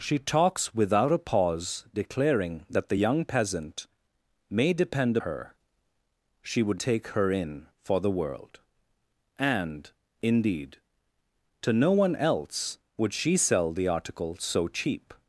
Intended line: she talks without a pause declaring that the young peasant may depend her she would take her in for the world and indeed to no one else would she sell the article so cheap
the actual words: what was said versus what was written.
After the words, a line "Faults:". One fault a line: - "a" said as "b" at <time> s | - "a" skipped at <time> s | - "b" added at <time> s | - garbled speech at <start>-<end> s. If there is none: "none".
she talks without a pause declaring that the young peasant may depend her she would take her in for the world and indeed to no one else would she sell the article so cheap
Faults:
none